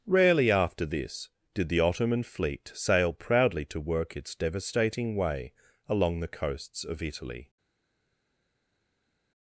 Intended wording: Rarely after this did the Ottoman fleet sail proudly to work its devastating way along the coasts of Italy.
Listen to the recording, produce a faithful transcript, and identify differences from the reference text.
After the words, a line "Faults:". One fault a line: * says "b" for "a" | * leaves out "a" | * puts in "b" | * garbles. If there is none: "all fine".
Rarely after this did the Ottoman fleet sail proudly to work its devastating way along the coasts of Italy.
Faults:
all fine